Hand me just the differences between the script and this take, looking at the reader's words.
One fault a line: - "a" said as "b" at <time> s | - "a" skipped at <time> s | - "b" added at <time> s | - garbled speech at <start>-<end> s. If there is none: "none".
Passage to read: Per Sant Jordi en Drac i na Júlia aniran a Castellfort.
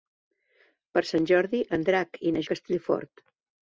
- "Júlia aniran" skipped at 2.4 s